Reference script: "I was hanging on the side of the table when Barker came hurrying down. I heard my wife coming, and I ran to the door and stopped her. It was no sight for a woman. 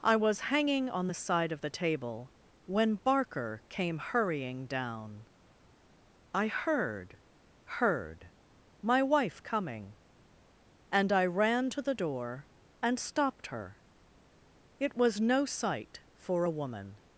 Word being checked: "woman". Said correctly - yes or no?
yes